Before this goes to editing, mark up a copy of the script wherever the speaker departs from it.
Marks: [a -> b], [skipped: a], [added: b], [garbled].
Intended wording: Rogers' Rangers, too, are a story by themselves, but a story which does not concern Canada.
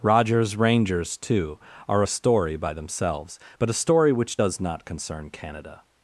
Rogers' Rangers, too, are a story by themselves, but a story which does not concern Canada.